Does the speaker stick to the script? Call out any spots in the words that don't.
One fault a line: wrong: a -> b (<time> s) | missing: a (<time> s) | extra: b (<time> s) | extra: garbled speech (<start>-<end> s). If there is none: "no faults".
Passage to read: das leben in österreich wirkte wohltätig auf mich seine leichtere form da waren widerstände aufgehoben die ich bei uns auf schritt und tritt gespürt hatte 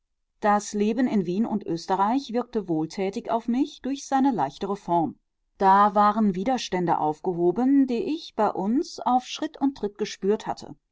extra: wien und (1.3 s)
extra: durch (3.8 s)